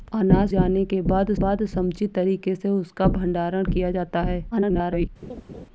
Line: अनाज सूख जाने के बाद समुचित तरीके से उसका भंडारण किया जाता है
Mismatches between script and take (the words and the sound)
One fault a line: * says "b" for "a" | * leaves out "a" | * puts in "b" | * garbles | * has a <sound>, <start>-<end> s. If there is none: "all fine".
* leaves out "सूख"
* puts in "बाद"
* garbles
* has a laugh, 5.2-5.7 s